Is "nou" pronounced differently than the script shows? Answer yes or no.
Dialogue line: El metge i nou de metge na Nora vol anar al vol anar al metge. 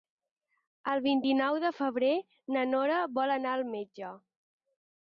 no